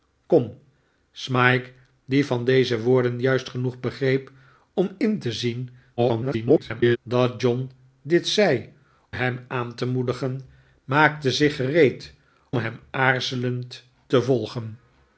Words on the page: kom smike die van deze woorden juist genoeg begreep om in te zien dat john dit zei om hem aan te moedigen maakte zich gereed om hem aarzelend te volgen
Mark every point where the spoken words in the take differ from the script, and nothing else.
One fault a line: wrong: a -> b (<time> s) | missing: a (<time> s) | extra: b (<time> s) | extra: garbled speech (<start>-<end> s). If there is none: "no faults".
extra: garbled speech (6.0-7.0 s)
missing: om (8.7 s)
missing: om (12.1 s)